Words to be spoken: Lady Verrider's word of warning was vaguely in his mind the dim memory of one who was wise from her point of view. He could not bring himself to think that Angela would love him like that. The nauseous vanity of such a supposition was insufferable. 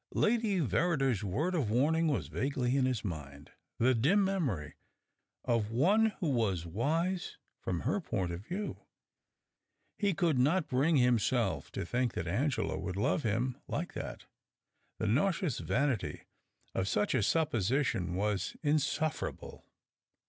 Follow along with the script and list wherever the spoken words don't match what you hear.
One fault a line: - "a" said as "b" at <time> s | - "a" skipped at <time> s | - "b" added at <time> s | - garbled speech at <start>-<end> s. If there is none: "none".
none